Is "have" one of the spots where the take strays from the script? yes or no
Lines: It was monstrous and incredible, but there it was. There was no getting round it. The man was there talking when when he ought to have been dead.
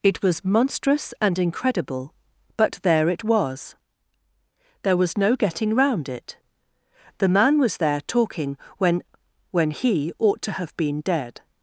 no